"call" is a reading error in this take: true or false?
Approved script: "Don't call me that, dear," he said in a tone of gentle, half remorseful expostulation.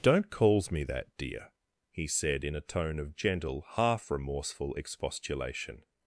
true